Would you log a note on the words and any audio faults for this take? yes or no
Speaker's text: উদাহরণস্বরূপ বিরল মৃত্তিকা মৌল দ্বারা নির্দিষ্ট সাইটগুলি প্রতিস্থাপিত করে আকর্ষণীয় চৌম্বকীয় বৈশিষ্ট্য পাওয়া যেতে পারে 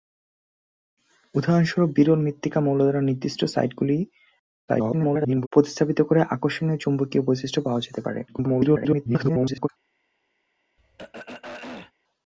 yes